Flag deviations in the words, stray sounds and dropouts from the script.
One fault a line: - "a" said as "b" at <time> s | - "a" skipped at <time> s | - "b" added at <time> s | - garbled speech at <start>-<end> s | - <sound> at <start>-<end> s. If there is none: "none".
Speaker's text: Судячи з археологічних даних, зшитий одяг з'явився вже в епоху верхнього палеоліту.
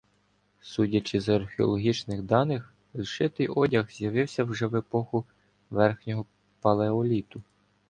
none